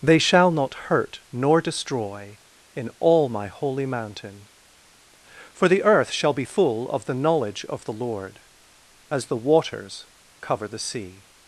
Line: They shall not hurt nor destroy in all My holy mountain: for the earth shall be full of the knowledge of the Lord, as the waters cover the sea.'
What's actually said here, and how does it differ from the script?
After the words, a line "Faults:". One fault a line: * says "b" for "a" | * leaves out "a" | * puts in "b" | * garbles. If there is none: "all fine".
They shall not hurt nor destroy in all My holy mountain: for the earth shall be full of the knowledge of the Lord, as the waters cover the sea.'
Faults:
all fine